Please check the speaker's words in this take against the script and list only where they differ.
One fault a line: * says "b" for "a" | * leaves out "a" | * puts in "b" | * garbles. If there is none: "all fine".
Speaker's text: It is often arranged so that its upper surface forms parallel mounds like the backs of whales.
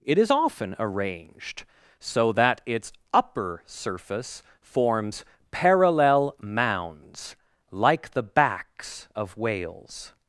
all fine